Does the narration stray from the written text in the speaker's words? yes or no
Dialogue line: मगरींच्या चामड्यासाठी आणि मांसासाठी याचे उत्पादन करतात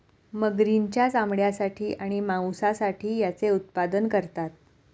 no